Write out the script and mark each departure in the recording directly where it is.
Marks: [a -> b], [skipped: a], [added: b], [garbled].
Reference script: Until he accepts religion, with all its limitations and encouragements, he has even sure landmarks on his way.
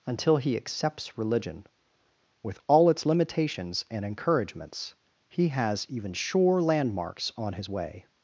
Until he accepts religion, with all its limitations and encouragements, he has even sure landmarks on his way.